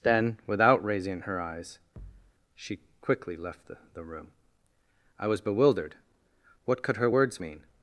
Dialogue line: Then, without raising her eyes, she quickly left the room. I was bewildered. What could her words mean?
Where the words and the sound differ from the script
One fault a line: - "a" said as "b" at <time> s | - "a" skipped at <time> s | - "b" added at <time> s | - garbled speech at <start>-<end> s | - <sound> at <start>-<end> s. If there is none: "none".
- thud at 2.0-2.3 s
- "the" added at 3.9 s